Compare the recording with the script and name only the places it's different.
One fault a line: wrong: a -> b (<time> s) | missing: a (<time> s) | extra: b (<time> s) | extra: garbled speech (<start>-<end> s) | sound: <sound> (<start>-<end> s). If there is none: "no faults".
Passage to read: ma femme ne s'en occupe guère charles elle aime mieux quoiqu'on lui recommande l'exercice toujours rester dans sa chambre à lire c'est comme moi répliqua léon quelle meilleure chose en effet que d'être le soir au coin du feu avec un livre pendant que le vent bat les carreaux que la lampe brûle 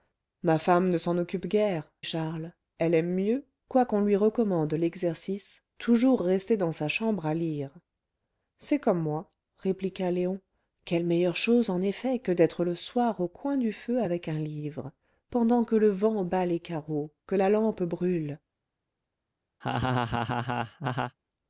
sound: laugh (19.6-21.2 s)